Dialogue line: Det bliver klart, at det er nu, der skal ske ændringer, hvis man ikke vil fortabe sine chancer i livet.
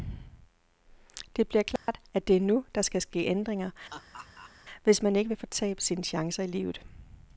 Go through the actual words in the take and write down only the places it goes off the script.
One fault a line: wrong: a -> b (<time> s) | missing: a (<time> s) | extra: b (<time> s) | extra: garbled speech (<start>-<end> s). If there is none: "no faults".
no faults